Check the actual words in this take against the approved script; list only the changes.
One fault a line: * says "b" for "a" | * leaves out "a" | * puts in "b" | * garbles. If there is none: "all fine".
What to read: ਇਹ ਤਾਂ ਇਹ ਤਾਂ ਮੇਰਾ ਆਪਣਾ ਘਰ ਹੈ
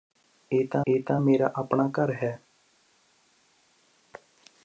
all fine